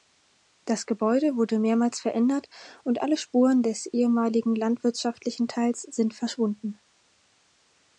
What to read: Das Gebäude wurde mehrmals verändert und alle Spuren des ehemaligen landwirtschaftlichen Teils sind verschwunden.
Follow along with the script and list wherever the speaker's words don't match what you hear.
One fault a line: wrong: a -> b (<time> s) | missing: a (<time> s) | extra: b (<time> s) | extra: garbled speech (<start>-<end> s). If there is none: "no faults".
no faults